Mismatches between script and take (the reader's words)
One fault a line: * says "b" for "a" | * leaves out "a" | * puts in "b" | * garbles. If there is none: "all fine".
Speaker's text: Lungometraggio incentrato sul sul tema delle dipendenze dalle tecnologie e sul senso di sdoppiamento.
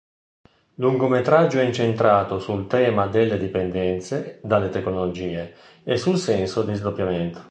* leaves out "sul"